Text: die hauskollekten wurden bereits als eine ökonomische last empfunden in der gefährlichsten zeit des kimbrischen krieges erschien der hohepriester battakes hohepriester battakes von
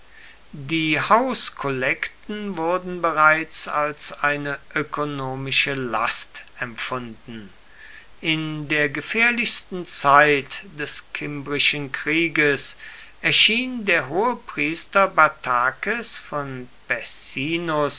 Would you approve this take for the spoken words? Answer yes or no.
no